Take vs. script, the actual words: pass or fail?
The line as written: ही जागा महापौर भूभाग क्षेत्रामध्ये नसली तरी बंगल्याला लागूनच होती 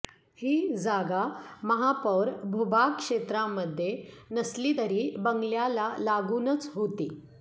pass